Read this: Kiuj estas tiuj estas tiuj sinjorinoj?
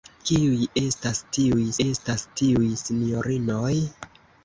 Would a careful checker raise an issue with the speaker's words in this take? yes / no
no